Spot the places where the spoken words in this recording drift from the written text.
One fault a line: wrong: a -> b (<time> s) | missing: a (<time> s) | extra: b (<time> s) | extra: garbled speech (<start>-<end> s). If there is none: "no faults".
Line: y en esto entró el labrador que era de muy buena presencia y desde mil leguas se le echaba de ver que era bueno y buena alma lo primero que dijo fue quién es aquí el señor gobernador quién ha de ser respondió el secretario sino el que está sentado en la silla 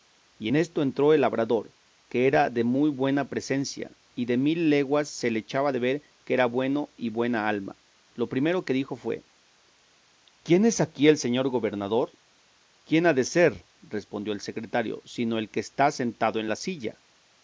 wrong: desde -> de (4.2 s)